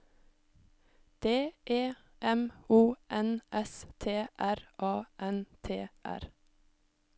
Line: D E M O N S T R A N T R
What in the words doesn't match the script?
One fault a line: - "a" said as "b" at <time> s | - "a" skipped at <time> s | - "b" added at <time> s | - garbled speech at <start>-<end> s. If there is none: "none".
none